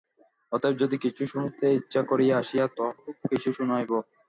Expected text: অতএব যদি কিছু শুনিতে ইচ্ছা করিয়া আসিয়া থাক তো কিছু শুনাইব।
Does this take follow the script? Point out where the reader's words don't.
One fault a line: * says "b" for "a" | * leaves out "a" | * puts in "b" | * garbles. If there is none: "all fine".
* leaves out "থাক"